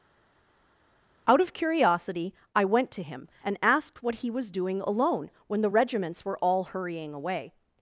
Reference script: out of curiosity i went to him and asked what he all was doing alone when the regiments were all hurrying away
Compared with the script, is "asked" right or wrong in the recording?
right